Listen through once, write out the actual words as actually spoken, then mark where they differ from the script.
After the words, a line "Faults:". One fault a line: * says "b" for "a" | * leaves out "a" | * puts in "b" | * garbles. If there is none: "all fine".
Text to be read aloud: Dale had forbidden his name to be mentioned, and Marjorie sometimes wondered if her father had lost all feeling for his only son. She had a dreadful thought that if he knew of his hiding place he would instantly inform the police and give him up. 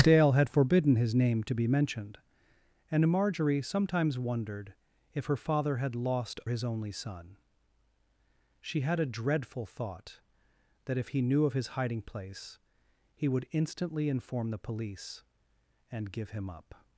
Dale had forbidden his name to be mentioned, and Marjorie sometimes wondered if her father had lost his only son. She had a dreadful thought that if he knew of his hiding place he would instantly inform the police and give him up.
Faults:
* leaves out "all feeling for"